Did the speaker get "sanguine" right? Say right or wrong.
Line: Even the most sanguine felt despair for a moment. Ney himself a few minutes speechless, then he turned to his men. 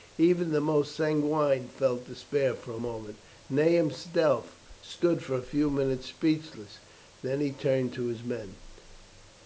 right